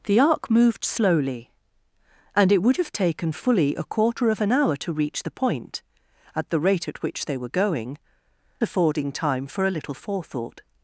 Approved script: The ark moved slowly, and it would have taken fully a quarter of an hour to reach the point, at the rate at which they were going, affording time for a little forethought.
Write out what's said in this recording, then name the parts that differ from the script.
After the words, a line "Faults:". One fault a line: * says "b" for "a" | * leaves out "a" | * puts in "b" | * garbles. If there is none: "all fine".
The ark moved slowly, and it would have taken fully a quarter of an hour to reach the point, at the rate at which they were going, affording time for a little forethought.
Faults:
all fine